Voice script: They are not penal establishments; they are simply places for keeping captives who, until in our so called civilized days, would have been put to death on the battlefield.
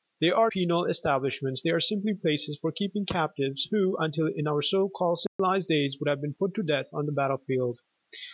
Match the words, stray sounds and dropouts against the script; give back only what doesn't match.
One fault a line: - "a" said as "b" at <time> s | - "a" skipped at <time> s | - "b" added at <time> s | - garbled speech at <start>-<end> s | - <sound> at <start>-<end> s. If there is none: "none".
- "not" skipped at 0.5 s
- dropout at 5.3-5.4 s